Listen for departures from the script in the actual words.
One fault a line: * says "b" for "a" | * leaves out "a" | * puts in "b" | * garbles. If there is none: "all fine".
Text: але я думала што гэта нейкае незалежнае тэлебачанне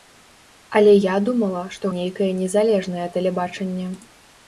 * leaves out "гэта"